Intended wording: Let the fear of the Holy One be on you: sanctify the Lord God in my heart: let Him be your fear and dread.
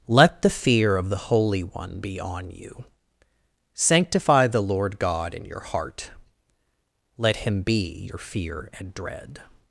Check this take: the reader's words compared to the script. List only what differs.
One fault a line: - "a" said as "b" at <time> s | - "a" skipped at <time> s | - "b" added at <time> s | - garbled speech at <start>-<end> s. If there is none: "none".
- "my" said as "your" at 5.5 s